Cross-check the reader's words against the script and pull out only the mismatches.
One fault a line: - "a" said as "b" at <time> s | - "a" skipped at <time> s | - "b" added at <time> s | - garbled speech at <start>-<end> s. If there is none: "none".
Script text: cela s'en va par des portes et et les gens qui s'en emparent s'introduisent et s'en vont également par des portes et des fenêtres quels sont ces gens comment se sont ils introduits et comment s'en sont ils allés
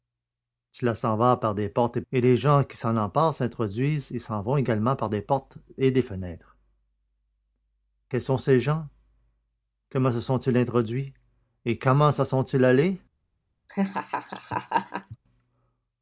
none